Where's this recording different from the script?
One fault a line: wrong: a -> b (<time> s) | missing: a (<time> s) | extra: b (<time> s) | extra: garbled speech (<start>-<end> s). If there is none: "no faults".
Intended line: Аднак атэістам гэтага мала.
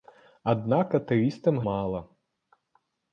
missing: гэтага (1.6 s)